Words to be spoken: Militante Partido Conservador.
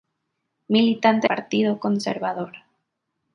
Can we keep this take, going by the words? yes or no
yes